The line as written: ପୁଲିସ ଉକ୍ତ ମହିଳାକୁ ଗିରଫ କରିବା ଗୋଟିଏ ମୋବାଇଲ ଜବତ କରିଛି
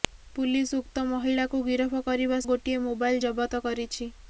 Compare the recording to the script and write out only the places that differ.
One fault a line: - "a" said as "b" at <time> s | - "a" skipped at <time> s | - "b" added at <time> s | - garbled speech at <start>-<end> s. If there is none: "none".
none